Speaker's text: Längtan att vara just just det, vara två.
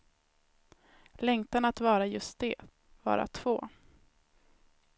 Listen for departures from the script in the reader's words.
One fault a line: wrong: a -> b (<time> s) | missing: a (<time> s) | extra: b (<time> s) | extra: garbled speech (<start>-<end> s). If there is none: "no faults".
missing: just (2.4 s)